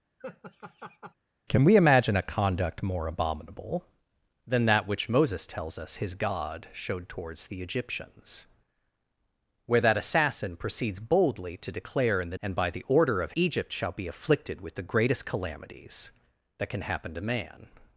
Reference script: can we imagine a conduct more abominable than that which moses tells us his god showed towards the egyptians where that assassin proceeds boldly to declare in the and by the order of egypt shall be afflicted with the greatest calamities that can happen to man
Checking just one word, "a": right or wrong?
right